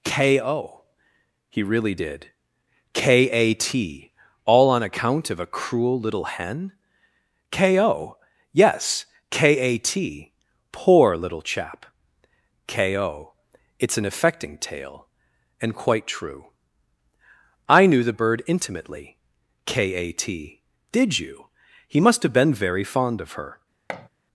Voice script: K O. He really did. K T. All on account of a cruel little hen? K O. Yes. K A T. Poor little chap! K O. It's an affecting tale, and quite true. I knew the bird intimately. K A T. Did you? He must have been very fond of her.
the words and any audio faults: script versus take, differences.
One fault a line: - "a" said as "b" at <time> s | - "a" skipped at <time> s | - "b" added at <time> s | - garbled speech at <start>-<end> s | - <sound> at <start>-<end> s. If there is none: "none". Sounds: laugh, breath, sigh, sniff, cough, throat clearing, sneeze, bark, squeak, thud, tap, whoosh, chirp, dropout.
- "A" added at 3.3 s
- thud at 23.9-24.1 s